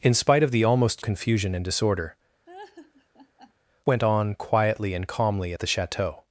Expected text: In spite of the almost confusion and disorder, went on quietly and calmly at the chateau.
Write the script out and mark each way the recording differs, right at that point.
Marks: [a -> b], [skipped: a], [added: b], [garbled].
In spite of the almost confusion and disorder, went on quietly and calmly at the chateau.